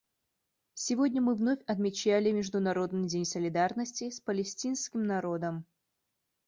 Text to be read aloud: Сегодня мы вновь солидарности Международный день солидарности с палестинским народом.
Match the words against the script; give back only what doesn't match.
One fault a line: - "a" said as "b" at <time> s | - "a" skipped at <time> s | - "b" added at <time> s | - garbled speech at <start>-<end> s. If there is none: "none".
- "солидарности" said as "отмечали" at 1.7 s